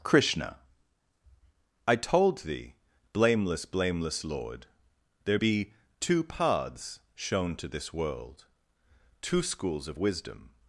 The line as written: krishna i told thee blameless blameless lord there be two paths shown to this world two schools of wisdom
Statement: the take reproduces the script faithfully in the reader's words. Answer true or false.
true